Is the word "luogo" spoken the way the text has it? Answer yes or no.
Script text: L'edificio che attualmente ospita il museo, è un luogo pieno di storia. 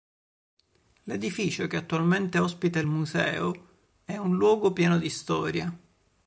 yes